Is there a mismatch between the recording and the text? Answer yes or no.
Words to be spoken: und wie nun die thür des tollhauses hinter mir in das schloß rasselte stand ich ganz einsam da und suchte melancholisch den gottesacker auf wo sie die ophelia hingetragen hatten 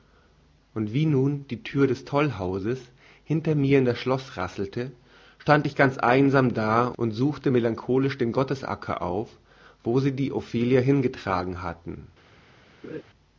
no